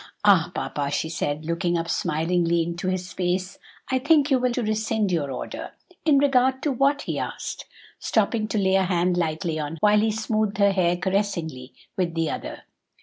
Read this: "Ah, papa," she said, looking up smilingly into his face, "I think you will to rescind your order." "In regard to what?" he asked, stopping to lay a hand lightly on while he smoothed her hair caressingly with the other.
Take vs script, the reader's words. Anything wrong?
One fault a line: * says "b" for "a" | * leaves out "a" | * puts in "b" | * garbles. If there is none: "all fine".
all fine